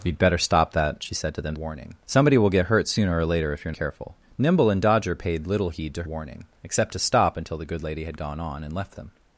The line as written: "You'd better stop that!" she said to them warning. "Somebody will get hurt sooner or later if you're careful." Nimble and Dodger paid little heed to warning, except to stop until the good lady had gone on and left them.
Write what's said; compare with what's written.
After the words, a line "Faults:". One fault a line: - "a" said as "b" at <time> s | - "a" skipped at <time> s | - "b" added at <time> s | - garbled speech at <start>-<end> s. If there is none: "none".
"You'd better stop that!" she said to them warning. "Somebody will get hurt sooner or later if you're careful." Nimble and Dodger paid little heed to warning, except to stop until the good lady had gone on and left them.
Faults:
none